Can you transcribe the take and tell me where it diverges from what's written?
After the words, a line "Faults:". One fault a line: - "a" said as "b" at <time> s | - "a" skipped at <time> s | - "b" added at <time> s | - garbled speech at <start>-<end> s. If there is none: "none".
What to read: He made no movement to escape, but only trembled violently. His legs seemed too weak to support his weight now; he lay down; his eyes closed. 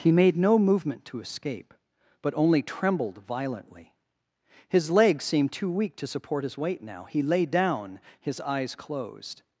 He made no movement to escape, but only trembled violently. His legs seemed too weak to support his weight now; he lay down; his eyes closed.
Faults:
none